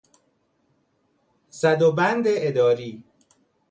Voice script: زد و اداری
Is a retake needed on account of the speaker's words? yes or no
yes